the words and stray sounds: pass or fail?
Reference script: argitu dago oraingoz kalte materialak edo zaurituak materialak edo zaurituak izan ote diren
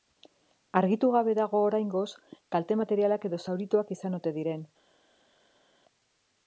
fail